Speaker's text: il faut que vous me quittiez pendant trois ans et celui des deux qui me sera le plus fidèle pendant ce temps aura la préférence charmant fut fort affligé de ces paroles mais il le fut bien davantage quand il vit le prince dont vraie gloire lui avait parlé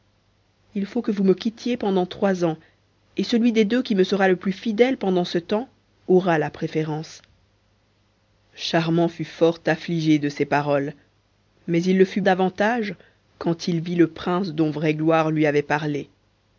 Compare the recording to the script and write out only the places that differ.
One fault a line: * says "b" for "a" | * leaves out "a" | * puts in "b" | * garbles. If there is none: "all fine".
* leaves out "bien"